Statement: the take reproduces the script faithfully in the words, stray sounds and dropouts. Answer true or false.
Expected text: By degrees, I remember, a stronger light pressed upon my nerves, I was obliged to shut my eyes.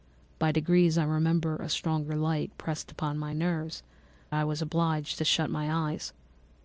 true